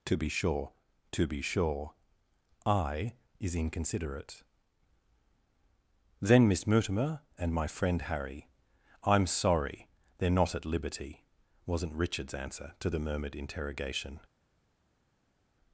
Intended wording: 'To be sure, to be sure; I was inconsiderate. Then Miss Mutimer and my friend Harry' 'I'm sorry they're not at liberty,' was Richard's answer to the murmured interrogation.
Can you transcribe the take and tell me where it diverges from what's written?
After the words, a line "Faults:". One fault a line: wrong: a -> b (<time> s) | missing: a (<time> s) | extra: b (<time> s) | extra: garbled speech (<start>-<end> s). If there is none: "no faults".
'To be sure, to be sure; I is inconsiderate. Then Miss Mutimer and my friend Harry' 'I'm sorry they're not at liberty,' wasn't Richard's answer to the murmured interrogation.
Faults:
wrong: was -> is (3.4 s)
wrong: was -> wasn't (11.7 s)